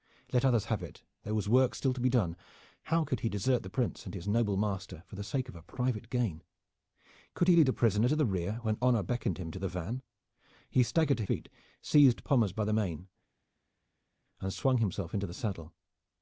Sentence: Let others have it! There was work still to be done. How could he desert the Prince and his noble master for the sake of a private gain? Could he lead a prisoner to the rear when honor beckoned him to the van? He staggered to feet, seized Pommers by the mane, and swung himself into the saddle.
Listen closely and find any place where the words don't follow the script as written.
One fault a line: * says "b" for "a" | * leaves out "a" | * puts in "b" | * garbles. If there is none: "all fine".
all fine